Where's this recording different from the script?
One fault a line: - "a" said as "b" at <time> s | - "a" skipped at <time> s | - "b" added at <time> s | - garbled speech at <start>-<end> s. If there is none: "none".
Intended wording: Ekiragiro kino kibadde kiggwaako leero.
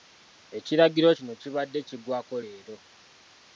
none